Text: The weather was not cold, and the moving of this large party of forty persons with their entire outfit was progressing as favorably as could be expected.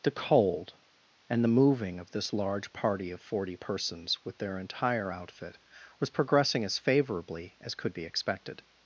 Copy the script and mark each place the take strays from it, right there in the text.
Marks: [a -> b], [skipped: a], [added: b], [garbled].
The [skipped: weather was not] cold, and the moving of this large party of forty persons with their entire outfit was progressing as favorably as could be expected.